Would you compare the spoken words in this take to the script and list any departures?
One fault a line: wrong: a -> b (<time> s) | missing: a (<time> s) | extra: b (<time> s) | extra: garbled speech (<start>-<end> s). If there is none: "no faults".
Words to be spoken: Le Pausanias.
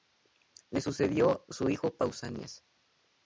extra: sucedió su hijo (0.8 s)